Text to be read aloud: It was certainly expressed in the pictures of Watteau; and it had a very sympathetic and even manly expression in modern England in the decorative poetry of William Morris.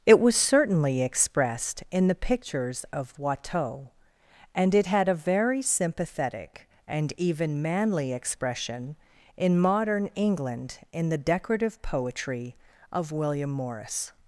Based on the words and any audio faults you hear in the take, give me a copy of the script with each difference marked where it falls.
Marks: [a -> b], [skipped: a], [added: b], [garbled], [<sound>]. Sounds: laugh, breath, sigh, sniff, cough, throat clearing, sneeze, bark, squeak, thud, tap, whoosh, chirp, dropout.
It was certainly expressed in the pictures of Watteau; and it had a very sympathetic and even manly expression in modern England in the decorative poetry of William Morris.